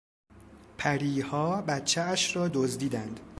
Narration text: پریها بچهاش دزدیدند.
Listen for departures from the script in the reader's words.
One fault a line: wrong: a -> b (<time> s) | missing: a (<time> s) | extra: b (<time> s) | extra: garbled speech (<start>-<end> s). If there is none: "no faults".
extra: را (2.3 s)